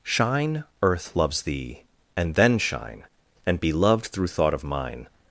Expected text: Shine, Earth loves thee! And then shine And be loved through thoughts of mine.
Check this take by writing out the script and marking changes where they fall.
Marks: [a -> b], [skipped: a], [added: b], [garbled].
Shine, Earth loves thee! And then shine And be loved through [thoughts -> thought] of mine.